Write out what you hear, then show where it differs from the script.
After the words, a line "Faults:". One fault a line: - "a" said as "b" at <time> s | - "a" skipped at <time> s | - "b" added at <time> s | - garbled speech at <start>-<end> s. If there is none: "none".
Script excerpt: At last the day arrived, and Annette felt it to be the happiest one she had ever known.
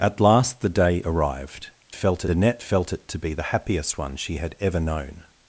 At last the day arrived, felt Annette felt it to be the happiest one she had ever known.
Faults:
- "and" said as "felt" at 1.9 s